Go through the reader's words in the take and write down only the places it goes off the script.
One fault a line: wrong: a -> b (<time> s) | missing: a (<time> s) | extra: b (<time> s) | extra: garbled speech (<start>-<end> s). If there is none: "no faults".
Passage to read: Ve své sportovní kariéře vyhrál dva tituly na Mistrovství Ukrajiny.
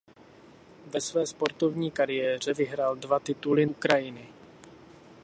missing: na Mistrovství (3.6 s)